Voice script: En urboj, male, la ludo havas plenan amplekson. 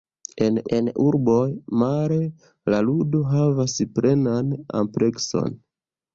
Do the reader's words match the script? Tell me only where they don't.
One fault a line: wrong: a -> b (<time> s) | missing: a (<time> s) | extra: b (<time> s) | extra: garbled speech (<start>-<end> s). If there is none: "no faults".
extra: en (0.8 s)